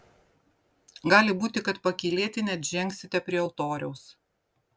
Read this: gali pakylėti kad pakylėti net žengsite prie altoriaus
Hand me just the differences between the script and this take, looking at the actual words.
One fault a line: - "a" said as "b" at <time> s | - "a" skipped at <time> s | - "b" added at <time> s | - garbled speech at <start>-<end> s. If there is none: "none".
- "pakylėti" said as "būti" at 1.4 s